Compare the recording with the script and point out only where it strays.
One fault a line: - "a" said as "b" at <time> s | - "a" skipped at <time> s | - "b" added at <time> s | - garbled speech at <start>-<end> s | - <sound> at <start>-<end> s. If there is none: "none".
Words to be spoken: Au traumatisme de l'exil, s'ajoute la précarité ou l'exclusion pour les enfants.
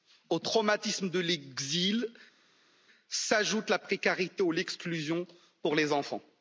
none